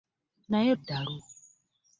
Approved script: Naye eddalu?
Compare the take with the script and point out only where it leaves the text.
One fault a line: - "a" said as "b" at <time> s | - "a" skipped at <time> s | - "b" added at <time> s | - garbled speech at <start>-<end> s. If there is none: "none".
none